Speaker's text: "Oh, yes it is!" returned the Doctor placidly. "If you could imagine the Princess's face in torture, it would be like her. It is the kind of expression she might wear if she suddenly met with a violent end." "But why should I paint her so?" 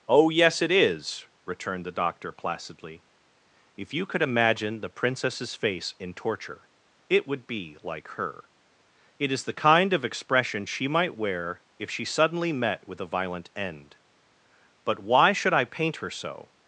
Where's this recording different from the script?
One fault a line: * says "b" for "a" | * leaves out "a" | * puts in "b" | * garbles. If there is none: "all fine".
all fine